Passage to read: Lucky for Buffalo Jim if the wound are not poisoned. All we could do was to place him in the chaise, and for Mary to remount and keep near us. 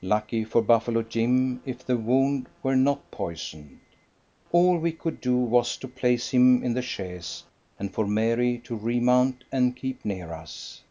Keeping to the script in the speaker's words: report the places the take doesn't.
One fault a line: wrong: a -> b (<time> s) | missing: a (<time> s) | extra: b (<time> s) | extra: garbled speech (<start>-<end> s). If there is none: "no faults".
wrong: are -> were (2.6 s)